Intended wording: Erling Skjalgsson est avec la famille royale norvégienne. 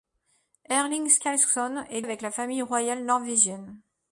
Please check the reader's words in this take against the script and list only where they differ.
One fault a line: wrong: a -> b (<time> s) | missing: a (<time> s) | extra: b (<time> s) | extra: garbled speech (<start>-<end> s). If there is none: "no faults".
no faults